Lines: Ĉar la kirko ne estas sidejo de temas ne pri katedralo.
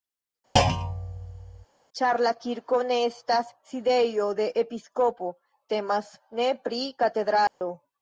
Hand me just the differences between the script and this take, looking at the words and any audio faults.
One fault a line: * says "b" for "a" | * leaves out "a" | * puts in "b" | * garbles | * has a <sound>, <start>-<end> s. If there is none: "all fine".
* has a thud, 0.6-1.7 s
* puts in "episkopo"
* has a dropout, 7.5-7.6 s